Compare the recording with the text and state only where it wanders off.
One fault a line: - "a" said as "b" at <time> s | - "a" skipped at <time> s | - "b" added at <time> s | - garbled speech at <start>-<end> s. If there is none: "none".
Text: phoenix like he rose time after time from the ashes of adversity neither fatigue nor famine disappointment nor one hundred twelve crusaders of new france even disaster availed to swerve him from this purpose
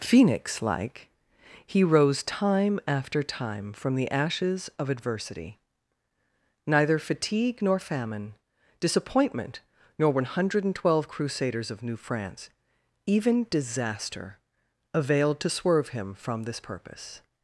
none